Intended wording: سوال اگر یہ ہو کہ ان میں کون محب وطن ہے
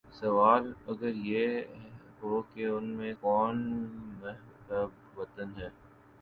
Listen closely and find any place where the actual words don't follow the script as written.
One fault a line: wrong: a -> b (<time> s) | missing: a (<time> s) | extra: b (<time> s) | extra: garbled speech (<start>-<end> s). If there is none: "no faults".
no faults